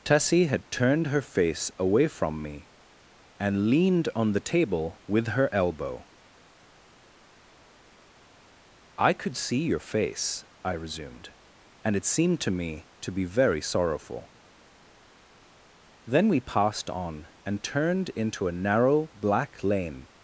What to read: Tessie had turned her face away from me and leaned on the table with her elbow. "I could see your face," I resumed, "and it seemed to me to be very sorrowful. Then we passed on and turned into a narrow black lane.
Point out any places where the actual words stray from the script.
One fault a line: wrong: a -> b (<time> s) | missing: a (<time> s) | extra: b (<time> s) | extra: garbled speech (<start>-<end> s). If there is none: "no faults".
no faults